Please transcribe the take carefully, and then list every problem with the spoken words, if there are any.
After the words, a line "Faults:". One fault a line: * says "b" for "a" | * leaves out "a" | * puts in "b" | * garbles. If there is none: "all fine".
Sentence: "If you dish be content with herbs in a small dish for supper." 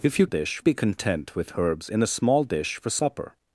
"If you dish be content with herbs in a small dish for supper."
Faults:
all fine